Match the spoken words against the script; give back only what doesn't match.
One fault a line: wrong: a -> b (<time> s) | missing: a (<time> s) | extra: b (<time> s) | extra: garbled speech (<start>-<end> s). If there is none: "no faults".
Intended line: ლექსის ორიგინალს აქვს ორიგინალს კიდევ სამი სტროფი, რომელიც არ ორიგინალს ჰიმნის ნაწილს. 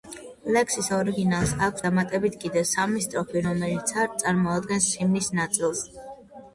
wrong: ორიგინალს -> დამატებით (1.9 s)
wrong: ორიგინალს -> წარმოადგენს (4.2 s)